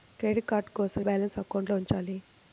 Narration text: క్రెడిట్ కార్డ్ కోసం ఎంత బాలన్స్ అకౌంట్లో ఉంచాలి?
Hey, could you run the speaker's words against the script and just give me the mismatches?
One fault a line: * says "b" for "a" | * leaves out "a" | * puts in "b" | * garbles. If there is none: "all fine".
* leaves out "ఎంత"